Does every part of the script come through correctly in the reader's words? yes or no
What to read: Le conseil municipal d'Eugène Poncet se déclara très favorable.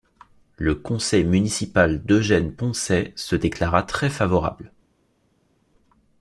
yes